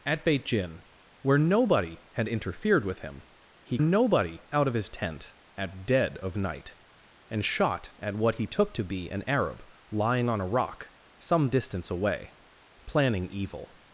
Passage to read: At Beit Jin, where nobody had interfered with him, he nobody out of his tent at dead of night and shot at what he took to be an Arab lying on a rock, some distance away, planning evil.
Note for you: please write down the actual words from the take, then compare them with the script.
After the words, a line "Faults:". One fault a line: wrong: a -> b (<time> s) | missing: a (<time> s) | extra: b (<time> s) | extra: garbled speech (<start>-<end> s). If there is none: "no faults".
At Beit Jin, where nobody had interfered with him, he nobody out of his tent at dead of night and shot at what he took to be an Arab lying on a rock, some distance away, planning evil.
Faults:
no faults